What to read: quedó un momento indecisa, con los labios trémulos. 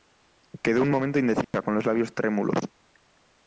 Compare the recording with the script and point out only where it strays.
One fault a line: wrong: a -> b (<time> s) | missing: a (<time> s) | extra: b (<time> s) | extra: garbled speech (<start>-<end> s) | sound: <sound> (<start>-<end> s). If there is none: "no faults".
sound: dropout (1.4-1.5 s)